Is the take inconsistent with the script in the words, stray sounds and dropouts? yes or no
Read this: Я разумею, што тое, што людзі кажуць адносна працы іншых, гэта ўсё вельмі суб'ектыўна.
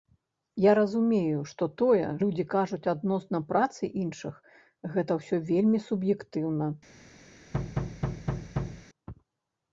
yes